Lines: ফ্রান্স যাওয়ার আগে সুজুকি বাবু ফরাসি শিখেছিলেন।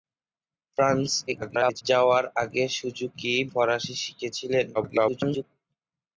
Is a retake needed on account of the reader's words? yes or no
yes